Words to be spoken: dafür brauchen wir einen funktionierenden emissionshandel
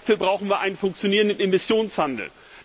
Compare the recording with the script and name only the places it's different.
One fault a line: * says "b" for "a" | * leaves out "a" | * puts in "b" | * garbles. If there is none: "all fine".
all fine